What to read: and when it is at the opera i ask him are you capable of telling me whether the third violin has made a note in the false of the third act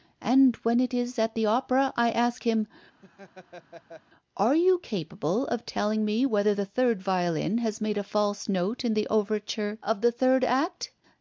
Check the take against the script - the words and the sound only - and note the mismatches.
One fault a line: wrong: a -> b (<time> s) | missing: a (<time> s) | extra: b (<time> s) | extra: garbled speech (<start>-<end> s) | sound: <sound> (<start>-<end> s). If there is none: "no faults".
sound: laugh (3.0-4.0 s)
extra: false (8.0 s)
wrong: false -> overture (9.1 s)